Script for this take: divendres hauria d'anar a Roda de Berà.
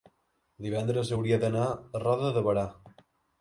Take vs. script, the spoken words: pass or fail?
pass